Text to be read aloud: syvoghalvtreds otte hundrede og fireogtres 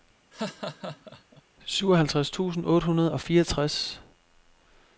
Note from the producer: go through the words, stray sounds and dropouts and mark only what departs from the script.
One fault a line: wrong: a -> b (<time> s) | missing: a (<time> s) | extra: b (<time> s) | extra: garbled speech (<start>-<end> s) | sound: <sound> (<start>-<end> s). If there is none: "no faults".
sound: laugh (0.3-1.4 s)
extra: tusind (2.3 s)